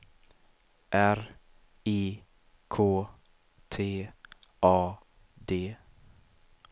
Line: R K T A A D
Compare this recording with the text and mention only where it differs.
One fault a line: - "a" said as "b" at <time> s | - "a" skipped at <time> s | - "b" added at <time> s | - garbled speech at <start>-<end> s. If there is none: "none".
- "I" added at 1.9 s
- "A" skipped at 4.9 s